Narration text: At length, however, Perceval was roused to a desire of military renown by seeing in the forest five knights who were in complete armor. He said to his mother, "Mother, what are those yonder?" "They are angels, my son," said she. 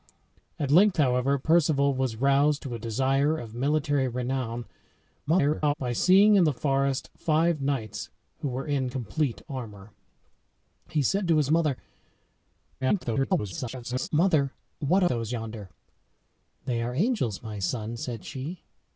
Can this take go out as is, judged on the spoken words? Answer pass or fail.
fail